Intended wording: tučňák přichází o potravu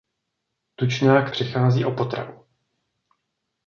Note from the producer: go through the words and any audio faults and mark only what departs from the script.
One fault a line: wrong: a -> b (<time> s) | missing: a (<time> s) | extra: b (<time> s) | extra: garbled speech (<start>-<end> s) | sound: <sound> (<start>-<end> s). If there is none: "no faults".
no faults